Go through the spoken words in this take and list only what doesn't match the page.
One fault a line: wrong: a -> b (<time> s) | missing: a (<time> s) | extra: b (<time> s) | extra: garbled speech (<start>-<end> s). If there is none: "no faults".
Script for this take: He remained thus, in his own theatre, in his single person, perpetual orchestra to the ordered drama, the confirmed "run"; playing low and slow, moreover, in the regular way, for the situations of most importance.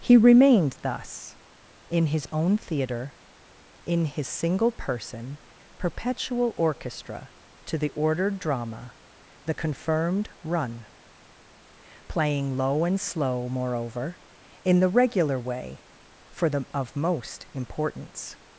missing: situations (16.6 s)